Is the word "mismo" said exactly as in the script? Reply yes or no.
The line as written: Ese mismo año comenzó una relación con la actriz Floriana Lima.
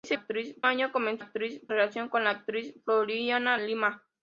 no